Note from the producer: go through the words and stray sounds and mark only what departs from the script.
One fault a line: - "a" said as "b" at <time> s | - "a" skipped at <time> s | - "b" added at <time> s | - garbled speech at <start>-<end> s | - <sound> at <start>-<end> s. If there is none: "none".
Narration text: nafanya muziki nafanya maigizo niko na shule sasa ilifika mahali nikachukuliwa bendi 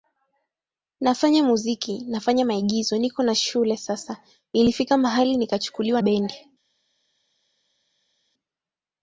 none